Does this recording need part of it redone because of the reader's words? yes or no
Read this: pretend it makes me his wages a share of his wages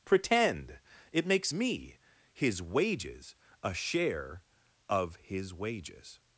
no